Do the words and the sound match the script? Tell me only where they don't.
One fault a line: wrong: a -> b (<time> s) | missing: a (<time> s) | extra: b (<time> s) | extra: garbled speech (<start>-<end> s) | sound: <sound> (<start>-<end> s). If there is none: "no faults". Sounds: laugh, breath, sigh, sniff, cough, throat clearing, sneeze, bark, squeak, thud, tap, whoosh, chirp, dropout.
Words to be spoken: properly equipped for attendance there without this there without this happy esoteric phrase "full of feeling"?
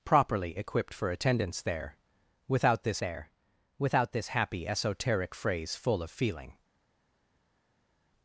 no faults